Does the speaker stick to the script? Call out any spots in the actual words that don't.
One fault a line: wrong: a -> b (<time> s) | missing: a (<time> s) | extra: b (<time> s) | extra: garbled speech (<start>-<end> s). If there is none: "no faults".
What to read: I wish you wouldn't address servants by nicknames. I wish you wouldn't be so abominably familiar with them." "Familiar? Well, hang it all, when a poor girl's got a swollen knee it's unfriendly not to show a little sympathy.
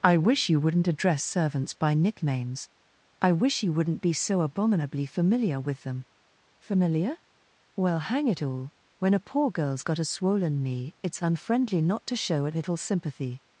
no faults